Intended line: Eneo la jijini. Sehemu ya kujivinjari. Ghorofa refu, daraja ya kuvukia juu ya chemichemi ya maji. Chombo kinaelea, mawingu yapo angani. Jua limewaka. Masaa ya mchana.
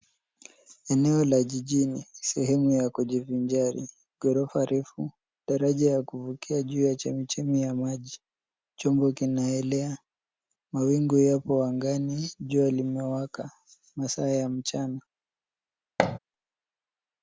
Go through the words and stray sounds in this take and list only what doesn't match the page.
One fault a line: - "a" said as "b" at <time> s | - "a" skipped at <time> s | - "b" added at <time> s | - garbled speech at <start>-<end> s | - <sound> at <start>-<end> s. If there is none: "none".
- thud at 16.0-16.2 s